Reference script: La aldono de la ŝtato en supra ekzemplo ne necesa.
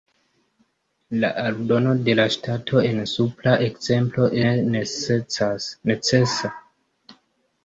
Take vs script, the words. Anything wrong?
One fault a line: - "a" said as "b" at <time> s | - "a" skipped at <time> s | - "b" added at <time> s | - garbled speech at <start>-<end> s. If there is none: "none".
none